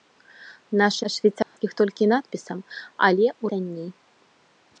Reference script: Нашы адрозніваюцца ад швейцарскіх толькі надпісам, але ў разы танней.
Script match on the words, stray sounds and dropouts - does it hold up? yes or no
no